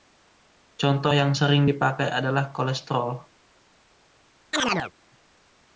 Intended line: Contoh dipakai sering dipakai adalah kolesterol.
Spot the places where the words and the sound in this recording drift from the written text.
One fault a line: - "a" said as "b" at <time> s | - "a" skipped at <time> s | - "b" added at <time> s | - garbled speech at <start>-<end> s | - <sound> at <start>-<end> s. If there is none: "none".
- "dipakai" said as "yang" at 1.1 s
- chirp at 4.5-4.9 s